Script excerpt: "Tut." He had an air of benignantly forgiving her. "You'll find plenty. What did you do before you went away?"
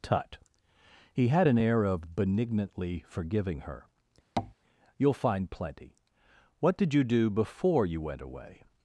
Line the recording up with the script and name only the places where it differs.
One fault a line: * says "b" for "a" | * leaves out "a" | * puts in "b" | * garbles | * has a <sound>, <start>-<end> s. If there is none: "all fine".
* has a tap, 4.4-4.5 s